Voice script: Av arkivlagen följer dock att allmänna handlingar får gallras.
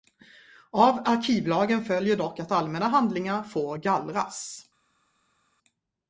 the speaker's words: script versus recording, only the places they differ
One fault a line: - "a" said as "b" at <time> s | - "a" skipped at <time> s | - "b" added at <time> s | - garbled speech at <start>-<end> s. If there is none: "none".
none